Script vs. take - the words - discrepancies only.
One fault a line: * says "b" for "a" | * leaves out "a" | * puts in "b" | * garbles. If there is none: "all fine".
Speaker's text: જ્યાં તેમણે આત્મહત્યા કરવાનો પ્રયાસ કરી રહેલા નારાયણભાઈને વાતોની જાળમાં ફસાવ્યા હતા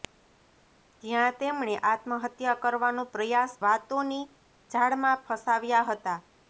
* leaves out "કરી રહેલા નારાયણભાઈને"